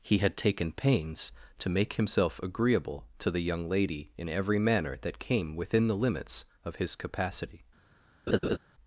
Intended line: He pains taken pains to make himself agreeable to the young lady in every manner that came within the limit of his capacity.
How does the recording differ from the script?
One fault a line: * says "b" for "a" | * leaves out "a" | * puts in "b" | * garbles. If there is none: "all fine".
* says "had" for "pains"
* says "limits" for "limit"